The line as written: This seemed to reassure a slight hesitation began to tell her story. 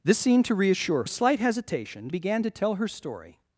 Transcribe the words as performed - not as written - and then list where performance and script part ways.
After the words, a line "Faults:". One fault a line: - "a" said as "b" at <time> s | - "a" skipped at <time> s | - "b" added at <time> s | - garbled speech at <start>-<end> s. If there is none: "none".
This seemed to reassure a slight hesitation began to tell her story.
Faults:
none